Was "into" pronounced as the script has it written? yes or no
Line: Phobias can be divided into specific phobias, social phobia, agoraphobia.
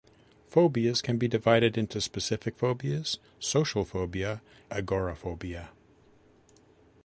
yes